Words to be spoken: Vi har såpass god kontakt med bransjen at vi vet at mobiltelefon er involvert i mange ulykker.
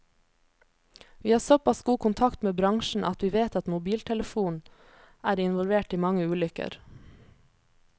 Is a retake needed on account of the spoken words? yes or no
no